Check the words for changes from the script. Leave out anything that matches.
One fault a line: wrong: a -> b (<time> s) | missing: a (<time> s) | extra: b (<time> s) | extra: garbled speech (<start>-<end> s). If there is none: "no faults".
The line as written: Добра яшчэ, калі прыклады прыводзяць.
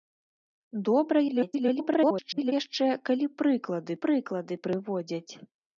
extra: garbled speech (1.3-2.5 s)
extra: прыклады (4.1 s)